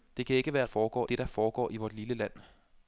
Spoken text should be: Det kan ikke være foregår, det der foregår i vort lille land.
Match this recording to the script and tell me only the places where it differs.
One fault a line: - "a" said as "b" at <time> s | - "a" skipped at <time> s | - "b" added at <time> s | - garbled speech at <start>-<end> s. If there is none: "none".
none